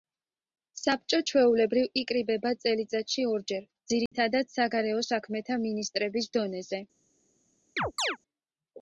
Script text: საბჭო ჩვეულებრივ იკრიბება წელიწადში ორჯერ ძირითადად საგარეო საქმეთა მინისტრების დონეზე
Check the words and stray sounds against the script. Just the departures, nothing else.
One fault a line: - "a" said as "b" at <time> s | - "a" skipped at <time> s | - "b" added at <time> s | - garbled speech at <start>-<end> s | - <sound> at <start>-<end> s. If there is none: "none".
- dropout at 4.1-4.1 s
- chirp at 7.8-8.2 s